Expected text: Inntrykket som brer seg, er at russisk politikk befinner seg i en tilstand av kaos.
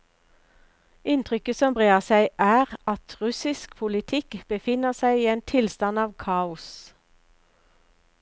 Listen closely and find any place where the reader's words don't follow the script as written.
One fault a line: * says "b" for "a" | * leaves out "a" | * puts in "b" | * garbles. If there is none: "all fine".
all fine